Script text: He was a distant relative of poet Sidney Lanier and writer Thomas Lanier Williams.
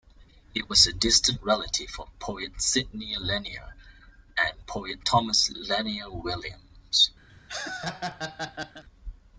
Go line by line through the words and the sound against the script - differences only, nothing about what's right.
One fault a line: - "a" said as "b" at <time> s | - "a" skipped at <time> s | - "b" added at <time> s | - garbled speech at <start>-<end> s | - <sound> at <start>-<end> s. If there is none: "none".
- "writer" said as "poet" at 4.6 s
- laugh at 7.3-8.8 s